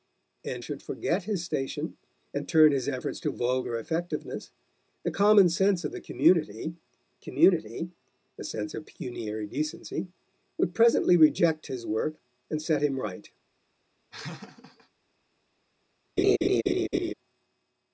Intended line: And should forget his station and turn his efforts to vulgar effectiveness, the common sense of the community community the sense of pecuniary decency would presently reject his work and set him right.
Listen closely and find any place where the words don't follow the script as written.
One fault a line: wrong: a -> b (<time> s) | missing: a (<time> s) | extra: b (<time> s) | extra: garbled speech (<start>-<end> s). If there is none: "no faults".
no faults